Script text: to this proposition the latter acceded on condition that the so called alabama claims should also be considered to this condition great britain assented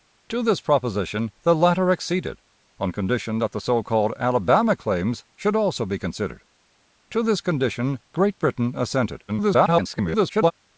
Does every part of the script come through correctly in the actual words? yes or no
no